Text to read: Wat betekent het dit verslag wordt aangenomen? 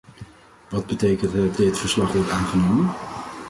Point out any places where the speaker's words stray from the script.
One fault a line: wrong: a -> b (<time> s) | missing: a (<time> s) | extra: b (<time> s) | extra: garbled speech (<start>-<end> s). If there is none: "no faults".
no faults